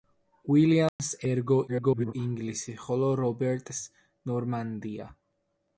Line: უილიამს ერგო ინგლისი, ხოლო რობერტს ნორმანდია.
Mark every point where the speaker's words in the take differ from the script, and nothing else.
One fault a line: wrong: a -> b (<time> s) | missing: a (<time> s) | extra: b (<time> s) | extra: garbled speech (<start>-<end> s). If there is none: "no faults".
extra: garbled speech (1.7-2.1 s)